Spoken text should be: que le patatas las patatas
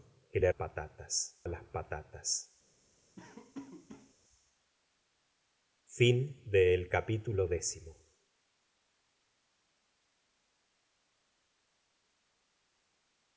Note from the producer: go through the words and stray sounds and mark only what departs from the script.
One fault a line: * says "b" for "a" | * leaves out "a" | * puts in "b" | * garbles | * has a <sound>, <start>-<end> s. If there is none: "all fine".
* has a laugh, 3.2-4.1 s